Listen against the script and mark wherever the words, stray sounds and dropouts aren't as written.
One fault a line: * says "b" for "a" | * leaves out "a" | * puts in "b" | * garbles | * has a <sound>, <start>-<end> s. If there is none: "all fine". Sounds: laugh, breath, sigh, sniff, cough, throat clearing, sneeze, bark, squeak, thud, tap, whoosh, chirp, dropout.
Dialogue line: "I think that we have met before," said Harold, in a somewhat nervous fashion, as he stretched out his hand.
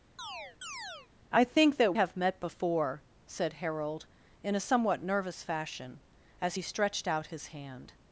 * has a chirp, 0.2-1.1 s
* leaves out "we"